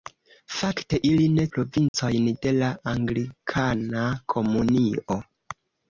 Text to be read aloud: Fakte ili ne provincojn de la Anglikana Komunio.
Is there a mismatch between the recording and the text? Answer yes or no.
no